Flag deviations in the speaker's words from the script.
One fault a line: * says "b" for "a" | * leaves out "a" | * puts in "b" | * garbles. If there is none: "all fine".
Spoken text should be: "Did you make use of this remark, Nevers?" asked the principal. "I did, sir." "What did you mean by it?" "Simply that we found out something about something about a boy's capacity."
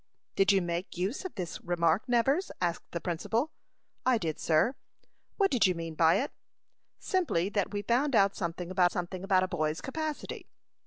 all fine